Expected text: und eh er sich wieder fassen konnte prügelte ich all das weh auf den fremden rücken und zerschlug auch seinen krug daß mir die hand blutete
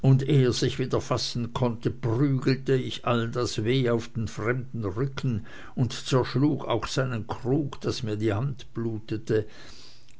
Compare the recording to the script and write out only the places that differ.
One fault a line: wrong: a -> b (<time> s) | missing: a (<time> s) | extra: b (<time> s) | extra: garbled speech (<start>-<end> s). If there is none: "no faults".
no faults